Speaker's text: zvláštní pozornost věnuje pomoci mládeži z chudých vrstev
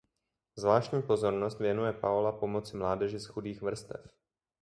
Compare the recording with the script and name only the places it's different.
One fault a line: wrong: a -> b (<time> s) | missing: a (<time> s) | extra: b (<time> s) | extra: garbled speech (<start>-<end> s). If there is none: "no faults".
extra: paola (1.9 s)